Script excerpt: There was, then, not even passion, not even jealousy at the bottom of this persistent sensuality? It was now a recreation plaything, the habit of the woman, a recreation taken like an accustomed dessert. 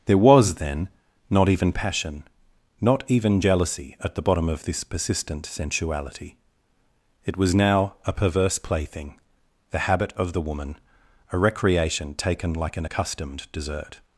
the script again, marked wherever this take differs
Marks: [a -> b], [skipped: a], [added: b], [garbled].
There was, then, not even passion, not even jealousy at the bottom of this persistent sensuality? It was now a [recreation -> perverse] plaything, the habit of the woman, a recreation taken like an accustomed dessert.